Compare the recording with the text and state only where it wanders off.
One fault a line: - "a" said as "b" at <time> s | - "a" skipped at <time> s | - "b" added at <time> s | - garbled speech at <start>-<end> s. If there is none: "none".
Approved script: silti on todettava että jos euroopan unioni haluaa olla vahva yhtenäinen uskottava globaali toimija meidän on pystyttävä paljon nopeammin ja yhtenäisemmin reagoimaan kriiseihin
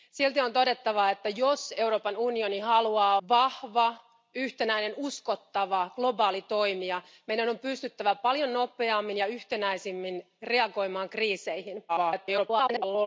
- "olla" skipped at 3.2 s
- garbled speech at 11.9-13.1 s